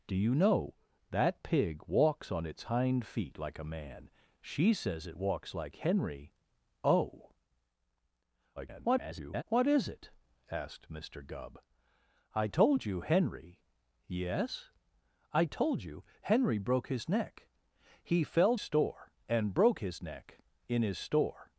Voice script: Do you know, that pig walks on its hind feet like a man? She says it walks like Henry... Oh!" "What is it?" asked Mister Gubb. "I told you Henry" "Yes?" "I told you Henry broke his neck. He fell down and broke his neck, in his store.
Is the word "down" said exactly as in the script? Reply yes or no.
no